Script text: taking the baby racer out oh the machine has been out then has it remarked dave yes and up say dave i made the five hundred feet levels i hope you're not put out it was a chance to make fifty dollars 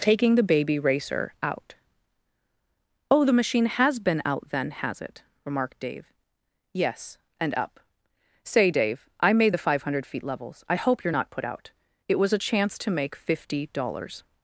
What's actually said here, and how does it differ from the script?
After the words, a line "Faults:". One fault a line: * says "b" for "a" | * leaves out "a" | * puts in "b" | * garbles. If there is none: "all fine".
taking the baby racer out oh the machine has been out then has it remarked dave yes and up say dave i made the five hundred feet levels i hope you're not put out it was a chance to make fifty dollars
Faults:
all fine